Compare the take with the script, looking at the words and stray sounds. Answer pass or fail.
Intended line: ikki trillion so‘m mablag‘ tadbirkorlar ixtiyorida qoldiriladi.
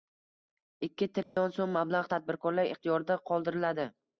fail